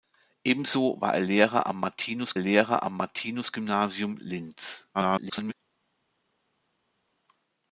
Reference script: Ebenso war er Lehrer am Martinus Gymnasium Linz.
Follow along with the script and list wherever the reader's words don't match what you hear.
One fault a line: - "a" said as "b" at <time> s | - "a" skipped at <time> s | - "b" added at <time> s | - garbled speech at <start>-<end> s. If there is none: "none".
- "Lehrer am Martinus" added at 2.4 s
- garbled speech at 4.9-5.5 s